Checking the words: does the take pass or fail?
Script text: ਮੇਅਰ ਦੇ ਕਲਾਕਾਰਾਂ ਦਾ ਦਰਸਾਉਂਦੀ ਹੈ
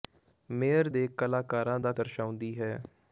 pass